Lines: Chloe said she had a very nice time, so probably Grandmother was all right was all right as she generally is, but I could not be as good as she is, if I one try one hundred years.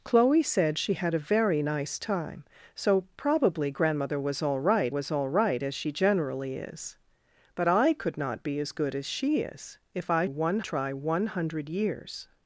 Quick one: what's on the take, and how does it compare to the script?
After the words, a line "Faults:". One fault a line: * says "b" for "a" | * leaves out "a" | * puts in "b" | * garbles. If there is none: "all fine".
Chloe said she had a very nice time, so probably Grandmother was all right was all right as she generally is, but I could not be as good as she is, if I one try one hundred years.
Faults:
all fine